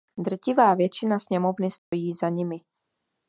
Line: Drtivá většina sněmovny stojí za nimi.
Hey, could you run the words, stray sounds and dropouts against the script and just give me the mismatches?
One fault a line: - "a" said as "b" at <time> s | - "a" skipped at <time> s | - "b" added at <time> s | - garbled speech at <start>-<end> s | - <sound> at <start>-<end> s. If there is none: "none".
- dropout at 1.8-1.9 s